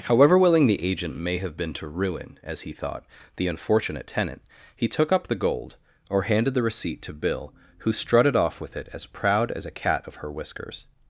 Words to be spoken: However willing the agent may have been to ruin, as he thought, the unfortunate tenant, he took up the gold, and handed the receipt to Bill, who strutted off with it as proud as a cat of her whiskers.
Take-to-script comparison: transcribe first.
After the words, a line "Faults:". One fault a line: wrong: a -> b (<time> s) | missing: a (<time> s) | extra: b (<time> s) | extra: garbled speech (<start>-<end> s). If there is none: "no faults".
However willing the agent may have been to ruin, as he thought, the unfortunate tenant, he took up the gold, or handed the receipt to Bill, who strutted off with it as proud as a cat of her whiskers.
Faults:
wrong: and -> or (6.1 s)